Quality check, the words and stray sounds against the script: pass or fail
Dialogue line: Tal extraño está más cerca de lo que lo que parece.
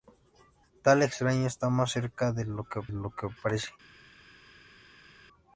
pass